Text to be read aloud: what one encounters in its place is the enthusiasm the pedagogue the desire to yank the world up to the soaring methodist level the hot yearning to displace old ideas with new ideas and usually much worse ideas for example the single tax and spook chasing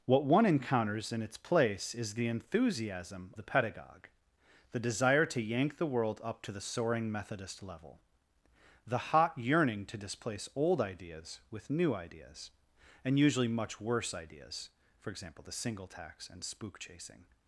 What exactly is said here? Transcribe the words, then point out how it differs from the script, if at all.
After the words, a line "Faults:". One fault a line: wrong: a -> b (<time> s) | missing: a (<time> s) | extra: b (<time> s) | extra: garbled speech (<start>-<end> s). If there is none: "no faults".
what one encounters in its place is the enthusiasm the pedagogue the desire to yank the world up to the soaring methodist level the hot yearning to displace old ideas with new ideas and usually much worse ideas for example the single tax and spook chasing
Faults:
no faults